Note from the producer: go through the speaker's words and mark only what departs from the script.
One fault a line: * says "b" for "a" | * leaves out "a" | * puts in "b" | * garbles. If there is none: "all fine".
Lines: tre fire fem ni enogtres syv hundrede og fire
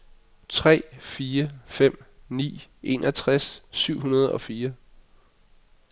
all fine